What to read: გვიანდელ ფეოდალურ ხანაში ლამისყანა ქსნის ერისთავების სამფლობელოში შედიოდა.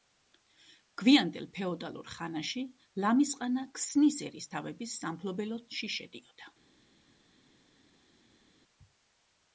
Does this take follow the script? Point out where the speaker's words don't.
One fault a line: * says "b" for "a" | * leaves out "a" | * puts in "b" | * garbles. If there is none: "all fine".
all fine